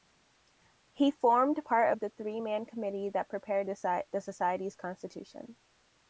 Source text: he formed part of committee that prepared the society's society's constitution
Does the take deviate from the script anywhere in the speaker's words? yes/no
yes